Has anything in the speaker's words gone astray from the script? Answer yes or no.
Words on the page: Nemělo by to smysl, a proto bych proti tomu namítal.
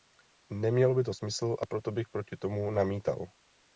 no